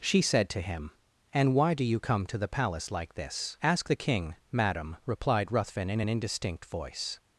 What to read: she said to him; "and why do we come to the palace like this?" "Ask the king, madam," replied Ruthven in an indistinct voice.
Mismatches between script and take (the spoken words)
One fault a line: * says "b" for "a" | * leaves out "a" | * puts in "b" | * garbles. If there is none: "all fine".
* says "you" for "we"